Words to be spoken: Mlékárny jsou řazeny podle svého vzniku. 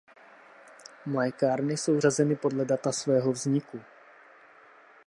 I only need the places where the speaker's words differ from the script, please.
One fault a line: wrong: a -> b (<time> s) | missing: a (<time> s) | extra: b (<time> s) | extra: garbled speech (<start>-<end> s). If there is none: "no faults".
extra: data (2.6 s)